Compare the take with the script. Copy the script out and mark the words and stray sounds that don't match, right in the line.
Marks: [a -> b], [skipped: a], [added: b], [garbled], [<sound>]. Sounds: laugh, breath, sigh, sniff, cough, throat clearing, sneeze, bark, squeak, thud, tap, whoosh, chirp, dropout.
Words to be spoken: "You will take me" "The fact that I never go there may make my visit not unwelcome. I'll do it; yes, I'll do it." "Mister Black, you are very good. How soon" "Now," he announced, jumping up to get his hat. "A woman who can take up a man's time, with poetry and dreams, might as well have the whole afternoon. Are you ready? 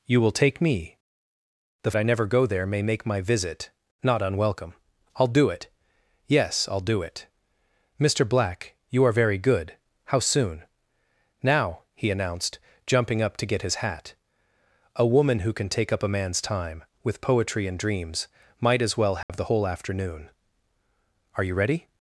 "You will take me" "The [skipped: fact that] I never go there may make my visit not unwelcome. I'll do it; yes, I'll do it." "Mister Black, you are very good. How soon" "Now," he announced, jumping up to get his hat. "A woman who can take up a man's time, with poetry and dreams, might as well have [dropout] the whole afternoon. Are you ready?